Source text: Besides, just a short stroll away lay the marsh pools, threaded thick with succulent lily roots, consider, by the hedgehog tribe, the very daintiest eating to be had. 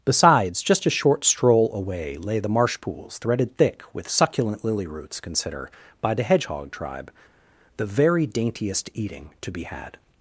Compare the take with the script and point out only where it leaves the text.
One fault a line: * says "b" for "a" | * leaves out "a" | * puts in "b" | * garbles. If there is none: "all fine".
all fine